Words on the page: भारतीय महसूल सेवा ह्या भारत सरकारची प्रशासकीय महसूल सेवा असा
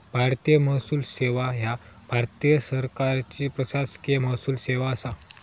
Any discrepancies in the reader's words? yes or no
no